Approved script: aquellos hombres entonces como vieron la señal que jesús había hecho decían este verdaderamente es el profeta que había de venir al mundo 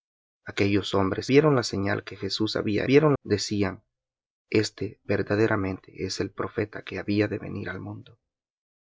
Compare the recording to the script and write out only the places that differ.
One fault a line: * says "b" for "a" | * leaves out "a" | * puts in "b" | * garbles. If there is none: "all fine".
* leaves out "entonces como"
* says "vieron" for "hecho"